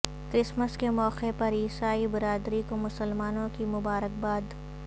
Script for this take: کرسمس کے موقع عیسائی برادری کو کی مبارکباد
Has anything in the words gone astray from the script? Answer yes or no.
yes